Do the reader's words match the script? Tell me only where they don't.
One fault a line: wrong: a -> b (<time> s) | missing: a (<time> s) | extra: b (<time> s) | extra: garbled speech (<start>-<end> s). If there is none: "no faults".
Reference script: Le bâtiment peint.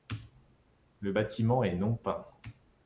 extra: est non (1.6 s)